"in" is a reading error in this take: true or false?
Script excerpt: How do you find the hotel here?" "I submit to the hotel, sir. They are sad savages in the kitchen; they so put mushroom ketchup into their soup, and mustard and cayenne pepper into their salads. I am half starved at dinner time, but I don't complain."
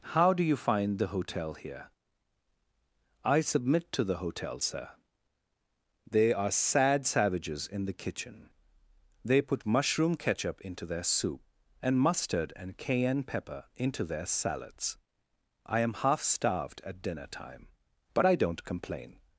false